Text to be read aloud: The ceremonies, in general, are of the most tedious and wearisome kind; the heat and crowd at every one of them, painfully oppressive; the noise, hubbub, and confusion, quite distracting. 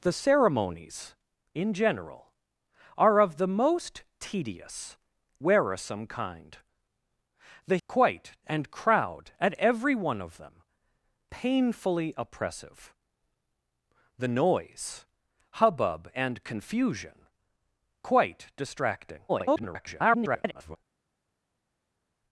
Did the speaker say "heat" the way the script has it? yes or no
no